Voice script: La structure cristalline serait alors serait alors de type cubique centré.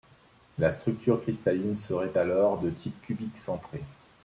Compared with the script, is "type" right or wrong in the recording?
right